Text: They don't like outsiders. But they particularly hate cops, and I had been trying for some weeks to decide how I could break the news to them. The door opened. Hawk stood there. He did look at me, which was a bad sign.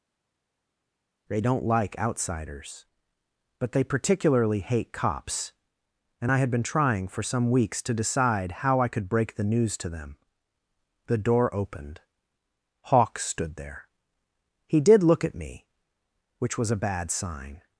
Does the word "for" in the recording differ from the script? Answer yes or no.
no